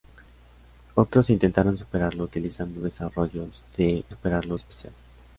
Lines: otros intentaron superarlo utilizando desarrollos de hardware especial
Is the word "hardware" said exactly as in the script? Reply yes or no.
no